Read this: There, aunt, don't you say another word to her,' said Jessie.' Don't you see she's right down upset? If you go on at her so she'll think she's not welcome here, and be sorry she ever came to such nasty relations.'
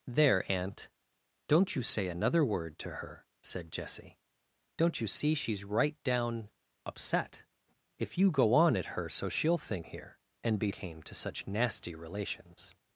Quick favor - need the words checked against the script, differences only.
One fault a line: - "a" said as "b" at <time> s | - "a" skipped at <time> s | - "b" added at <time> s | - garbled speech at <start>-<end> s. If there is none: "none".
- "she's not welcome" skipped at 9.9 s
- "sorry she ever" skipped at 10.7 s